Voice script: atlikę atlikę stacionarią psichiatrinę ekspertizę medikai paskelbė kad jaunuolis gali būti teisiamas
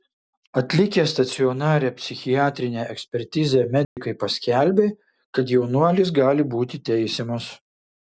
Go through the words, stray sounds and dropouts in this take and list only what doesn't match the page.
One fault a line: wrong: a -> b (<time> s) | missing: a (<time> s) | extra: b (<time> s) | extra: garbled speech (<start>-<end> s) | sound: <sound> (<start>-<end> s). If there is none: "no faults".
missing: atlikę (1.0 s)
sound: dropout (3.8-4.0 s)